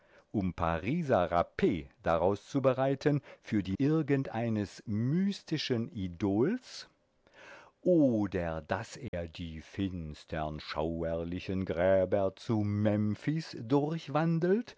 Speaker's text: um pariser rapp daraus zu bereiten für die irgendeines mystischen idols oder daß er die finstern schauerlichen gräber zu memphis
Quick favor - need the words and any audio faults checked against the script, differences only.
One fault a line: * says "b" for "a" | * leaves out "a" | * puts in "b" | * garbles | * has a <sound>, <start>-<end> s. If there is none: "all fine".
* has a dropout, 9.1-9.1 s